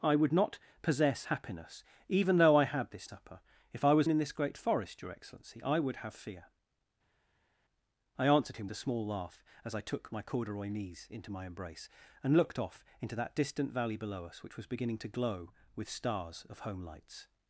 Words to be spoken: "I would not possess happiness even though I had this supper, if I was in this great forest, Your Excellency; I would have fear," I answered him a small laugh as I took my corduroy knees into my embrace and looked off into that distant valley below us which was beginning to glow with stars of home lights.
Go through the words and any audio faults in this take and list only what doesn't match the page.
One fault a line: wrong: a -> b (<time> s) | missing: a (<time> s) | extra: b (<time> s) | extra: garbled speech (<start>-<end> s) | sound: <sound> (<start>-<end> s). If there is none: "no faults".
no faults